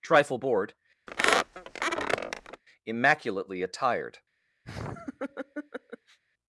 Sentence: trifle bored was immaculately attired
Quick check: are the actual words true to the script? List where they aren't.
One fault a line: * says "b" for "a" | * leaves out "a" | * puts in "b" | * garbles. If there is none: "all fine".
* leaves out "was"